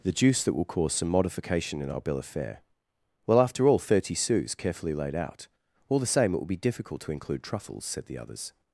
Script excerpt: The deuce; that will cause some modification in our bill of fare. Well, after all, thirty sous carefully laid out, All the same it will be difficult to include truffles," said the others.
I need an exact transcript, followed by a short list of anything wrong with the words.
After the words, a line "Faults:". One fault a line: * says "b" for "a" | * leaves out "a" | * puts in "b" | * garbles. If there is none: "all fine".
The juice; that will cause some modification in our bill of fare. Well, after all, thirty sous carefully laid out, All the same it will be difficult to include truffles," said the others.
Faults:
* says "juice" for "deuce"